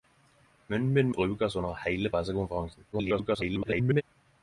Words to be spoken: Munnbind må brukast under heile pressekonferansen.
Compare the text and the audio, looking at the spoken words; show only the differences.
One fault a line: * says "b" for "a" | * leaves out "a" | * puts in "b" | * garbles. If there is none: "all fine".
* leaves out "må"
* garbles